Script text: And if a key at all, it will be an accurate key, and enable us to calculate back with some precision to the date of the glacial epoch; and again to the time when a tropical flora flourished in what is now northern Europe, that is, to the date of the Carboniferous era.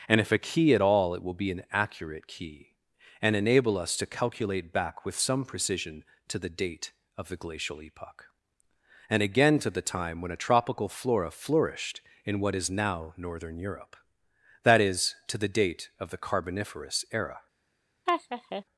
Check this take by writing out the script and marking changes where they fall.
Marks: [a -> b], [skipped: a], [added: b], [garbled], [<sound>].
And if a key at all, it will be an accurate key, and enable us to calculate back with some precision to the date of the glacial epoch; and again to the time when a tropical flora flourished in what is now northern Europe, that is, to the date of the Carboniferous era. [laugh]